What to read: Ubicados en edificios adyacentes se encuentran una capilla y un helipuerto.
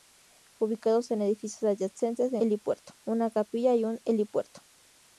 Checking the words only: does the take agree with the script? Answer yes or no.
no